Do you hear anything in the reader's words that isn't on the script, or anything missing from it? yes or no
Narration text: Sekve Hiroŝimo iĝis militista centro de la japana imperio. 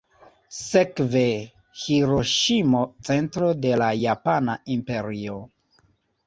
yes